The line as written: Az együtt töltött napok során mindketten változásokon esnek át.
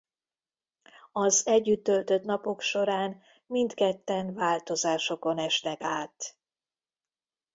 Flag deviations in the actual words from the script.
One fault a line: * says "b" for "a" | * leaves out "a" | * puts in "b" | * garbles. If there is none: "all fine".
all fine